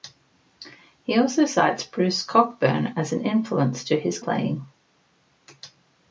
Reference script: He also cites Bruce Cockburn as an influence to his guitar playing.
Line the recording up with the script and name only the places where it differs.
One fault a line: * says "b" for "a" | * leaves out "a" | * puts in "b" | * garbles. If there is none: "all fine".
* leaves out "guitar"